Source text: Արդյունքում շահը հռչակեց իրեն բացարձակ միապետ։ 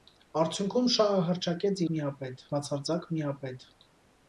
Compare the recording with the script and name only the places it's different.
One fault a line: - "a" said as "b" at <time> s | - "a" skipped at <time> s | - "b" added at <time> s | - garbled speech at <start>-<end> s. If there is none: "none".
- "իրեն" said as "միապետ" at 2.0 s